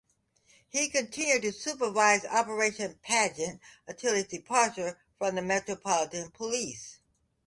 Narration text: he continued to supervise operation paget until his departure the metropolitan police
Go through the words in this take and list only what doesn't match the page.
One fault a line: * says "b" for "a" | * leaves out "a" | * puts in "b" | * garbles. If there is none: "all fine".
* puts in "from"